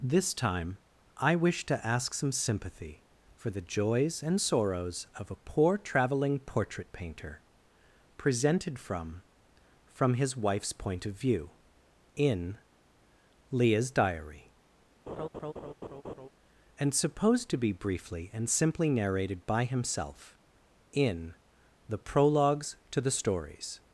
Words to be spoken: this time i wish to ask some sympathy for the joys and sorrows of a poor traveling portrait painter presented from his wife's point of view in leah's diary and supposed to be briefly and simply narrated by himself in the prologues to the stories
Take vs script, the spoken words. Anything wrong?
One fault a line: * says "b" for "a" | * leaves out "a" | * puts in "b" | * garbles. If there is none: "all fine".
* puts in "from"